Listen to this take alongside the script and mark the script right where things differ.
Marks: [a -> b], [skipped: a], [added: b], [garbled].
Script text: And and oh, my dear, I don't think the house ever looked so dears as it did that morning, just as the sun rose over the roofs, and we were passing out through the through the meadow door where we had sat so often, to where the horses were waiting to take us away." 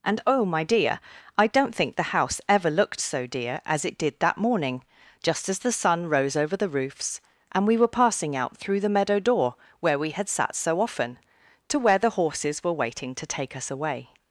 And [skipped: and] oh, my dear, I don't think the house ever looked so [dears -> dear] as it did that morning, just as the sun rose over the roofs, and we were passing out through the [skipped: through the] meadow door where we had sat so often, to where the horses were waiting to take us away."